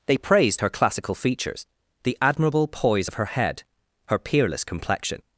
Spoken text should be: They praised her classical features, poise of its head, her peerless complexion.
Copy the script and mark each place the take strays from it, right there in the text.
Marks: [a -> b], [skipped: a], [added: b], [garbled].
They praised her classical features, [added: the admirable] poise of [its -> her] head, her peerless complexion.